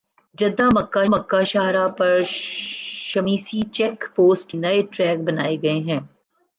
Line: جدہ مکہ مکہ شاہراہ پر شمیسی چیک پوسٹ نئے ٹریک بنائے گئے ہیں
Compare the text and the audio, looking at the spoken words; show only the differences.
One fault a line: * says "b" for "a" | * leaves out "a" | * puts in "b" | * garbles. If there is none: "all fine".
all fine